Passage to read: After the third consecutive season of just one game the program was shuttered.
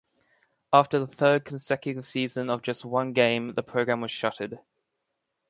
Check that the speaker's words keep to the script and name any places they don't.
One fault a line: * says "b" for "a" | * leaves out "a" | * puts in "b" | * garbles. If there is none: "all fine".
all fine